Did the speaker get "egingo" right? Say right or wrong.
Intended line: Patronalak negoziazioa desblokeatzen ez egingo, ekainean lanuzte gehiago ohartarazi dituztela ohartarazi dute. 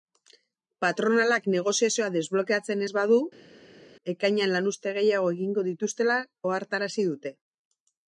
wrong